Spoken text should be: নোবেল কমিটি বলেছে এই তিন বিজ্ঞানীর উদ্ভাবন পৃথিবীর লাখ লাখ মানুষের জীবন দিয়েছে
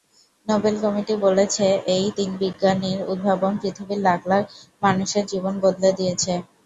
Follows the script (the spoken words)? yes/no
no